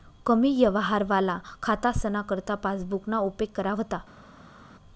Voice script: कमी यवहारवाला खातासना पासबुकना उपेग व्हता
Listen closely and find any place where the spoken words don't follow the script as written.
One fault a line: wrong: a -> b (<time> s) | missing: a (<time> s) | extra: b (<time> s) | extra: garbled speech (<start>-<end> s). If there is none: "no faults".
extra: करता (2.2 s)
extra: करा (3.6 s)